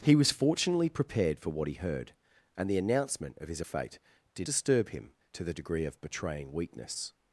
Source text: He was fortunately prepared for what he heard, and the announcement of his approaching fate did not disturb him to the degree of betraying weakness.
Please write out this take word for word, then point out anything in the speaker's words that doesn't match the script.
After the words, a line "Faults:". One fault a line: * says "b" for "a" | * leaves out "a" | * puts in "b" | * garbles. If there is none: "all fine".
He was fortunately prepared for what he heard, and the announcement of his fate did disturb him to the degree of betraying weakness.
Faults:
* leaves out "approaching"
* leaves out "not"